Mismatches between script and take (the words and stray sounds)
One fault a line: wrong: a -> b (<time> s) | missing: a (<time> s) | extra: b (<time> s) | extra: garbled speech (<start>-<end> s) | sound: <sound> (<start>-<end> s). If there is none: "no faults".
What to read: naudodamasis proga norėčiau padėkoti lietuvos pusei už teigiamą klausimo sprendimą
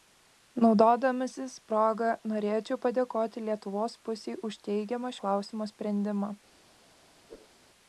sound: whoosh (7.3-7.6 s)